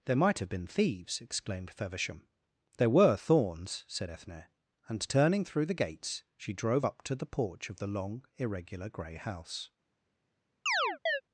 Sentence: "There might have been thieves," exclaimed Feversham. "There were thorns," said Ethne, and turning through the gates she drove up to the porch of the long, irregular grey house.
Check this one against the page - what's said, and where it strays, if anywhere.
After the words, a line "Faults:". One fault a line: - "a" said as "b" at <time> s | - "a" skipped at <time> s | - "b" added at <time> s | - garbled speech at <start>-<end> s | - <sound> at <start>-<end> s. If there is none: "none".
"There might have been thieves," exclaimed Feversham. "There were thorns," said Ethne, and turning through the gates she drove up to the porch of the long, irregular grey house.
Faults:
- chirp at 10.7-11.2 s